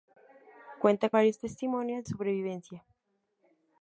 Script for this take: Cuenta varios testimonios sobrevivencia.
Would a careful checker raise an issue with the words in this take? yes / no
no